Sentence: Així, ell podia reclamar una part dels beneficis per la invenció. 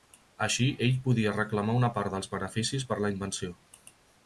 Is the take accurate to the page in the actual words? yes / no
yes